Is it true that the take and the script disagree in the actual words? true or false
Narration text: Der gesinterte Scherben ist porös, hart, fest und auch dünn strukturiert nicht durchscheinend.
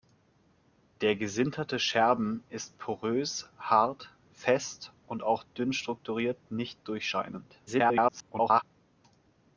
true